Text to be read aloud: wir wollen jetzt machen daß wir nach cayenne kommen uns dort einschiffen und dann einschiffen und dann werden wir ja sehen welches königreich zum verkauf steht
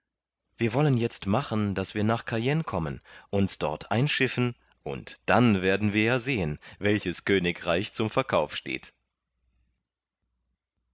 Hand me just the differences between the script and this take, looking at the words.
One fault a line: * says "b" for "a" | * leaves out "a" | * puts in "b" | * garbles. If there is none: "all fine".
* leaves out "einschiffen und dann"